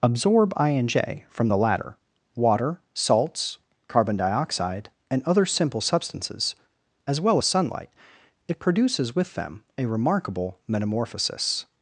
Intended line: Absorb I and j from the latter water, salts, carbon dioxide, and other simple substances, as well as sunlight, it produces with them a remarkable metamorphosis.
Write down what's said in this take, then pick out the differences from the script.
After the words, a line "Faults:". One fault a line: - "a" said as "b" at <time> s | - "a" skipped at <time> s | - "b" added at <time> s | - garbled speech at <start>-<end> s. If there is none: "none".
Absorb I and j from the latter water, salts, carbon dioxide, and other simple substances, as well as sunlight, it produces with them a remarkable metamorphosis.
Faults:
none